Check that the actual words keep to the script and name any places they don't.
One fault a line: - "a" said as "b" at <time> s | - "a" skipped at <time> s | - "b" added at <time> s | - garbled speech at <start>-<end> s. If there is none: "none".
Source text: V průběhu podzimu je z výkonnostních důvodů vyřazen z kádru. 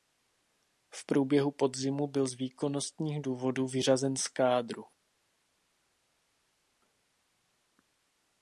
- "je" said as "byl" at 2.1 s